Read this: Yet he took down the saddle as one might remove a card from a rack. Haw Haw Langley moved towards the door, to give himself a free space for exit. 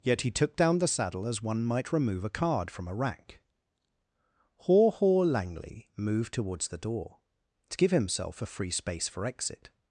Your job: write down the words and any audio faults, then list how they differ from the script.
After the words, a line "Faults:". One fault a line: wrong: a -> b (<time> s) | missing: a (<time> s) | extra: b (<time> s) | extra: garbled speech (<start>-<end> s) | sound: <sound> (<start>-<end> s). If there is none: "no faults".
Yet he took down the saddle as one might remove a card from a rack. Haw Haw Langley moved towards the door, to give himself a free space for exit.
Faults:
no faults